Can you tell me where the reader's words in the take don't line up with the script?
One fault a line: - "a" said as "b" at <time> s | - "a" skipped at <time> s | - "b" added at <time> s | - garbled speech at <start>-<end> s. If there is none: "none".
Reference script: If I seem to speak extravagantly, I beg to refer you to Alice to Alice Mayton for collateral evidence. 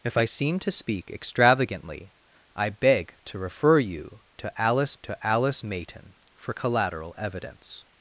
none